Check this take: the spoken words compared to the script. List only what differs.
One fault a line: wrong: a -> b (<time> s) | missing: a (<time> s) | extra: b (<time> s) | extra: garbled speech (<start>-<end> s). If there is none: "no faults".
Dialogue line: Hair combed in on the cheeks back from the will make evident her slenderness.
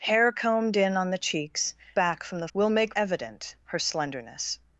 no faults